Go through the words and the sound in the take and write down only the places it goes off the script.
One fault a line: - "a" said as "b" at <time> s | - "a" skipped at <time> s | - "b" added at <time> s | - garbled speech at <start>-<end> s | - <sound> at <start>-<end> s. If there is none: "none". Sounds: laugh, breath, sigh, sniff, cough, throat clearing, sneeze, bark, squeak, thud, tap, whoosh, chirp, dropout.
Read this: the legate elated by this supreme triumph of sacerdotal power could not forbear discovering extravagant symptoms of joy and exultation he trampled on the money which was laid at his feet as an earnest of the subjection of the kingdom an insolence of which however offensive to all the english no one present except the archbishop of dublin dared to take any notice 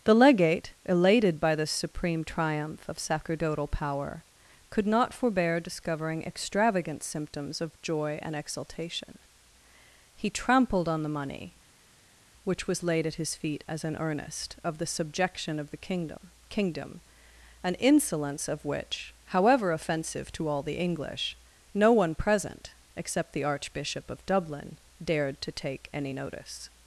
- "kingdom" added at 16.5 s